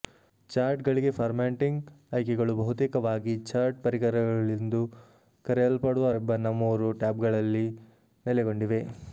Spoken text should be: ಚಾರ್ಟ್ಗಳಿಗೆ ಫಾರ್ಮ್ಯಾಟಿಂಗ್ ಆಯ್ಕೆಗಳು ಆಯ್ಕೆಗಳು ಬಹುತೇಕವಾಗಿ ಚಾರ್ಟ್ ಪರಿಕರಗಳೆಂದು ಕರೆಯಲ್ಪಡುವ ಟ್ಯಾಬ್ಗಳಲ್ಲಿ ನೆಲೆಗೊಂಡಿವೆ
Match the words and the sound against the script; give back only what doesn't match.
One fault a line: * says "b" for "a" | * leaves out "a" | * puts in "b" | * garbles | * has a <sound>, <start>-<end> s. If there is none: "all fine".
* leaves out "ಆಯ್ಕೆಗಳು"
* puts in "ರಿಬ್ಬನ್ನ ಮೂರು"